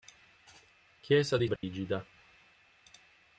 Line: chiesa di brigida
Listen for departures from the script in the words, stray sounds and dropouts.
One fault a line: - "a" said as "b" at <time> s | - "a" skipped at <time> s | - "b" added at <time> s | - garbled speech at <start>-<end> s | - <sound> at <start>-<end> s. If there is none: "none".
- dropout at 1.6-1.6 s